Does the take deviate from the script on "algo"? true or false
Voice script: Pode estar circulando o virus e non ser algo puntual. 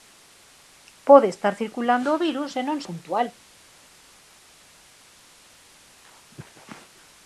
true